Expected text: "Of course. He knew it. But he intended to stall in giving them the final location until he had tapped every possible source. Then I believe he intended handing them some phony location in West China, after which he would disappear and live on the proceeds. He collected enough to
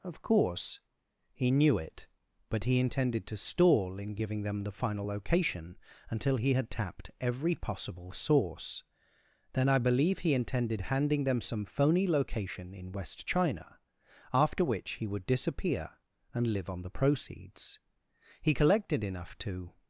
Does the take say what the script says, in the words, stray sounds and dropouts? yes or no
yes